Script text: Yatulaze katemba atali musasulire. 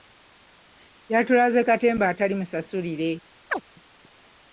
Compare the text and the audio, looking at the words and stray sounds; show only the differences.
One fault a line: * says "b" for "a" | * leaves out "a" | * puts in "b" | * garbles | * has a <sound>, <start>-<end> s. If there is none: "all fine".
* has a chirp, 3.5-3.6 s